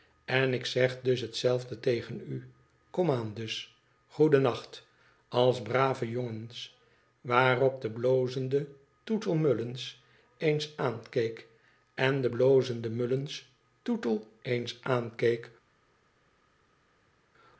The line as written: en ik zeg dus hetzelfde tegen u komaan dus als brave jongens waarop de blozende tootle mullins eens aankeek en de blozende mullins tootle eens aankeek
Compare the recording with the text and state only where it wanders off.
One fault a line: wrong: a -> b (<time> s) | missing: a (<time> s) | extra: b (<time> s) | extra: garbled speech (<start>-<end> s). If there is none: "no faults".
extra: goedennacht (4.1 s)